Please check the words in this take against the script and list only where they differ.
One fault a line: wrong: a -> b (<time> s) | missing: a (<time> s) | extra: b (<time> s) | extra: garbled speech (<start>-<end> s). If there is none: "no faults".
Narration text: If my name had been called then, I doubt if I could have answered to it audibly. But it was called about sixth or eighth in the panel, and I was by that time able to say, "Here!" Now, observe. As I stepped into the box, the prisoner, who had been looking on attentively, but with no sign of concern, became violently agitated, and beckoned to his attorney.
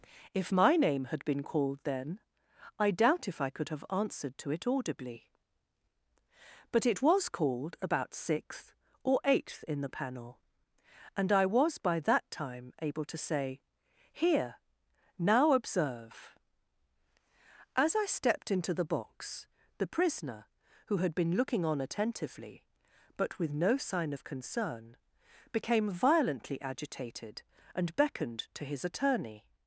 no faults